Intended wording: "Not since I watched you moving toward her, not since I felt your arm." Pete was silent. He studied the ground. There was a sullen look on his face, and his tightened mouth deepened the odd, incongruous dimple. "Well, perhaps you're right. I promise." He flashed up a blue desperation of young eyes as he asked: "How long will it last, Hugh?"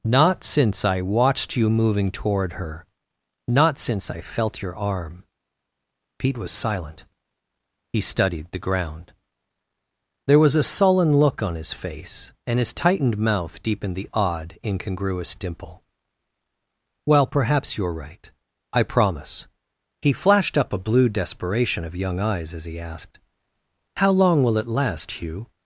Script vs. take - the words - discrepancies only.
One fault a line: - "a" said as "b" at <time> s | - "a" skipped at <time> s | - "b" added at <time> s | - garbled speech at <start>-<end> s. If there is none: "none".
none